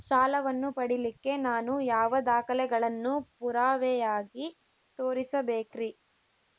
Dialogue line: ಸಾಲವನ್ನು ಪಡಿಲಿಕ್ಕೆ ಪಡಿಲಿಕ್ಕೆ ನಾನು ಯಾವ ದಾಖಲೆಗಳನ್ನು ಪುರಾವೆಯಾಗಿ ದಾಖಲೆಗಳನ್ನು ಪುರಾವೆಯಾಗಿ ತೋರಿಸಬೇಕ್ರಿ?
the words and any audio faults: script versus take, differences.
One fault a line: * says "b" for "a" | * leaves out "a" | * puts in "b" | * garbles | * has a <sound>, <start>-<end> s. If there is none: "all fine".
* leaves out "ಪಡಿಲಿಕ್ಕೆ"
* leaves out "ದಾಖಲೆಗಳನ್ನು ಪುರಾವೆಯಾಗಿ"